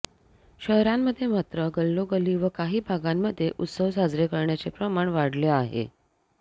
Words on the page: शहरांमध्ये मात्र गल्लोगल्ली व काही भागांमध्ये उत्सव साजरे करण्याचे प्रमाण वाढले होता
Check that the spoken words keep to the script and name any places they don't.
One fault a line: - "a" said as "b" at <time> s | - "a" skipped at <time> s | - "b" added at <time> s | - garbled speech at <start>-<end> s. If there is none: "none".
- "होता" said as "आहे" at 5.5 s